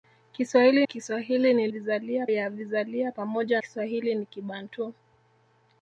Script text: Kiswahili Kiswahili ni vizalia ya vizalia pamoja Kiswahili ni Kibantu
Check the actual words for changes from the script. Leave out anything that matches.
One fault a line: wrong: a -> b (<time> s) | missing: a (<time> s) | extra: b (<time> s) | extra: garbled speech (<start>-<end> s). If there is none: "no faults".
no faults